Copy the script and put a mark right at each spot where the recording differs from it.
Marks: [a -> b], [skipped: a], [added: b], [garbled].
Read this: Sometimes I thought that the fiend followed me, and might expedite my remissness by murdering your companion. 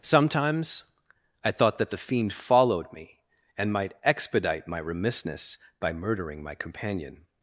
Sometimes I thought that the fiend followed me, and might expedite my remissness by murdering [your -> my] companion.